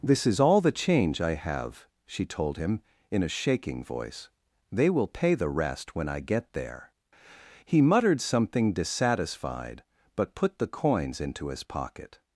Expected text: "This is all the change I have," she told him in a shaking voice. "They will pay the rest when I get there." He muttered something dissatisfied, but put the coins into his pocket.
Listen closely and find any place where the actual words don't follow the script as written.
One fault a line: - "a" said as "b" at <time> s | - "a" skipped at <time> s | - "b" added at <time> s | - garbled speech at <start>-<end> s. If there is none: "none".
none